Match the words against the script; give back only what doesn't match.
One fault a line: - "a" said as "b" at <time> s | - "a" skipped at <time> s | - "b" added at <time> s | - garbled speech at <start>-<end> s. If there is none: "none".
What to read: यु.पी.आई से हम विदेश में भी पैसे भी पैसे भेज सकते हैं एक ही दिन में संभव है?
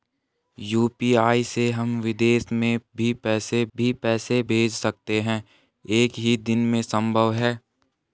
none